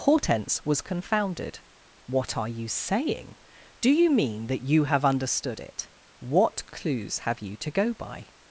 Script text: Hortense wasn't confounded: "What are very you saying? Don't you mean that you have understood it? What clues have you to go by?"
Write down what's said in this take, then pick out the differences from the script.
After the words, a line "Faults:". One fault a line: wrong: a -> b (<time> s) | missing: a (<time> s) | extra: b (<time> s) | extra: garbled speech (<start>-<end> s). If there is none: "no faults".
Hortense was confounded: "What are you saying? Do you mean that you have understood it? What clues have you to go by?"
Faults:
wrong: wasn't -> was (0.7 s)
missing: very (2.5 s)
wrong: Don't -> Do (3.8 s)